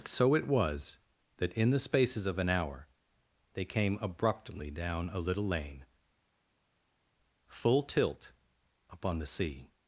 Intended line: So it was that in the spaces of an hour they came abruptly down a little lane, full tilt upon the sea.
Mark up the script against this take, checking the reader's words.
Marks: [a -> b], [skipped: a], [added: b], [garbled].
So it was that in the spaces of an hour they came abruptly down a little lane, full tilt upon the sea.